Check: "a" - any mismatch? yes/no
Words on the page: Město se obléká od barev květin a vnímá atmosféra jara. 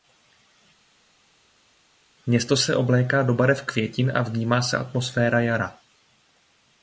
no